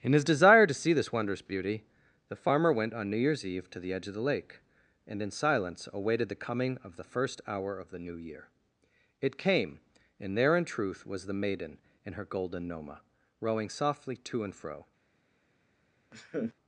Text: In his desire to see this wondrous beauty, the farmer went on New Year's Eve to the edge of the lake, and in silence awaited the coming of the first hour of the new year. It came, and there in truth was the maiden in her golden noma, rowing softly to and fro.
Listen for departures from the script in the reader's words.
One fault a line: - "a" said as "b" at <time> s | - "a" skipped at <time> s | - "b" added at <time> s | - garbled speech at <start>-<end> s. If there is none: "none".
none